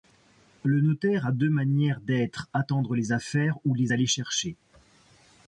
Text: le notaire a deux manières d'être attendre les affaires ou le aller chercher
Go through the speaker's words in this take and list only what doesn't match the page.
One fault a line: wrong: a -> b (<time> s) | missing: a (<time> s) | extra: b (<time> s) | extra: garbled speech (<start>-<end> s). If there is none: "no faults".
wrong: le -> les (3.8 s)